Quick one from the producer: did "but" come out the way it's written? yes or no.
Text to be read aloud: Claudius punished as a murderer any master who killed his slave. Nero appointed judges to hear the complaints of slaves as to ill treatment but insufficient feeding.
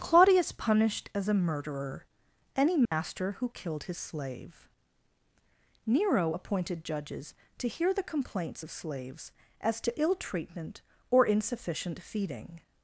no